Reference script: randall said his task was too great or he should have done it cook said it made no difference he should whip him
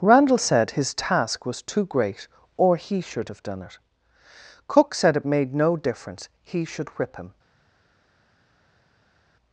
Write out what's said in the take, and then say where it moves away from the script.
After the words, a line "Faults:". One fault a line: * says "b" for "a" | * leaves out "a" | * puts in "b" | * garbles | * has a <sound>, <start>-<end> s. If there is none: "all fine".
randall said his task was too great or he should have done it cook said it made no difference he should whip him
Faults:
all fine